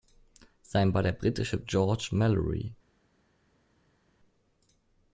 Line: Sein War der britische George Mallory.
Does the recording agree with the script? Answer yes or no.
yes